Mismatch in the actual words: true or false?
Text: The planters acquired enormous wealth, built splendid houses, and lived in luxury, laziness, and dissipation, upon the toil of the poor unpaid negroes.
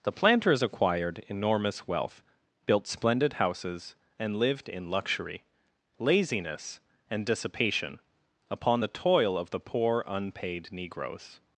false